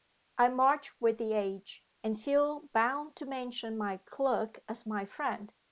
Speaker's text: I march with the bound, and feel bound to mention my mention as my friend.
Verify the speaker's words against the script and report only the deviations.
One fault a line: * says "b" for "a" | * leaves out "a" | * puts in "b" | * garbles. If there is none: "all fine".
* says "age" for "bound"
* says "clerk" for "mention"